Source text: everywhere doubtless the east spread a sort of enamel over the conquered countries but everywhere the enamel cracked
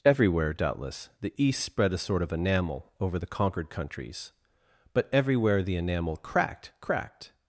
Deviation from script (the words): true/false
true